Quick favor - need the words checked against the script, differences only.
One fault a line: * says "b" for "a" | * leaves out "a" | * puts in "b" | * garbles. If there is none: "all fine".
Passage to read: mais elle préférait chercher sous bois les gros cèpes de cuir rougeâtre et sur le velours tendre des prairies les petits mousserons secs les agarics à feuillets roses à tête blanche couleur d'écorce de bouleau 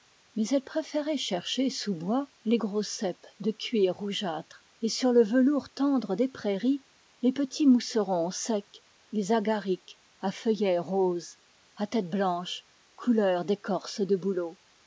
all fine